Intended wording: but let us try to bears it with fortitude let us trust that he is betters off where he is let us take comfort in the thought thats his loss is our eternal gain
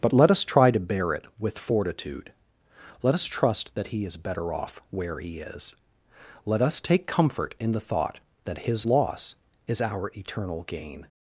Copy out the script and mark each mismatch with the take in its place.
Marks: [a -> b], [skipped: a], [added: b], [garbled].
but let us try to [bears -> bear] it with fortitude let us trust that he is [betters -> better] off where he is let us take comfort in the thought [thats -> that] his loss is our eternal gain